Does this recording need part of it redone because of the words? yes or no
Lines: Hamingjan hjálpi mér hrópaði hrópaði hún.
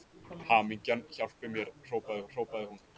no